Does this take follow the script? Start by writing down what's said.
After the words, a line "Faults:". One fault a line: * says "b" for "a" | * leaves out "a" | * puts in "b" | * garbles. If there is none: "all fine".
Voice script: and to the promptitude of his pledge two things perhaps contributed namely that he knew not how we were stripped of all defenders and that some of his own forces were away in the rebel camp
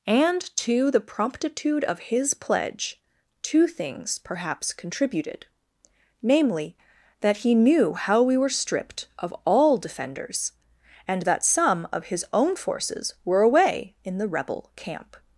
and to the promptitude of his pledge two things perhaps contributed namely that he knew how we were stripped of all defenders and that some of his own forces were away in the rebel camp
Faults:
* leaves out "not"